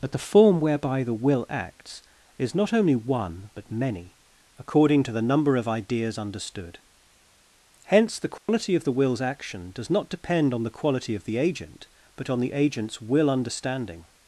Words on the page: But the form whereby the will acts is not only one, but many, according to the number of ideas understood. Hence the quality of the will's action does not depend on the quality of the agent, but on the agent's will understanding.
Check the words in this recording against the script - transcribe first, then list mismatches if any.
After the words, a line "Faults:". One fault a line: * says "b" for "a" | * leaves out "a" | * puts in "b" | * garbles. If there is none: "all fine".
But the form whereby the will acts is not only one, but many, according to the number of ideas understood. Hence the quality of the will's action does not depend on the quality of the agent, but on the agent's will understanding.
Faults:
all fine